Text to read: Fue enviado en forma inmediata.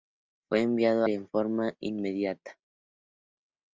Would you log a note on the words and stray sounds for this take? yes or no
no